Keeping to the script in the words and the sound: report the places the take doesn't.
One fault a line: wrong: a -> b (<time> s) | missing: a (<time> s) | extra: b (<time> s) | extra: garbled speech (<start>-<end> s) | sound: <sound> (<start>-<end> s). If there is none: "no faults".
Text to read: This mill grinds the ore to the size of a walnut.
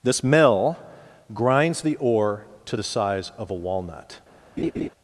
sound: laugh (4.6-4.9 s)